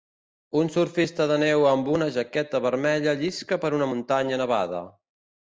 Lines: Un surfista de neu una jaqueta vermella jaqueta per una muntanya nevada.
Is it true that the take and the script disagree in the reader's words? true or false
true